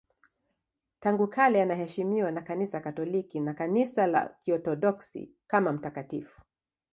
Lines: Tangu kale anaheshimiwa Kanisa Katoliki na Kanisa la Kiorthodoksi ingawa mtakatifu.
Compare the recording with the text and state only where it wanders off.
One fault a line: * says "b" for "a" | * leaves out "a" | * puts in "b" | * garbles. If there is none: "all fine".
* puts in "na"
* says "kama" for "ingawa"